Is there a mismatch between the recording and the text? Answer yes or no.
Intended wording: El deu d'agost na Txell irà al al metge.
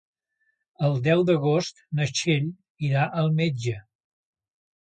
yes